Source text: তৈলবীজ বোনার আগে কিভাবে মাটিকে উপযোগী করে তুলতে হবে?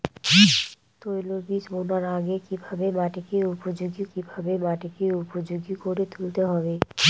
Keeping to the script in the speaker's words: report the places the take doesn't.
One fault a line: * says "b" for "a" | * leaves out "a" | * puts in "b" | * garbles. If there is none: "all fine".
* puts in "কিভাবে মাটিকে উপযোগী"